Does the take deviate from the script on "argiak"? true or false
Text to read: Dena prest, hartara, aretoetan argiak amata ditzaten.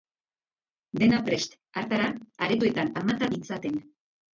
true